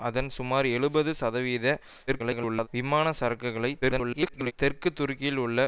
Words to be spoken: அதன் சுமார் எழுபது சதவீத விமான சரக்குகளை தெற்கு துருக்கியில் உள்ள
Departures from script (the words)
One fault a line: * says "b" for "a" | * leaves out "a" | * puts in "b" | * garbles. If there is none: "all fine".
* garbles
* garbles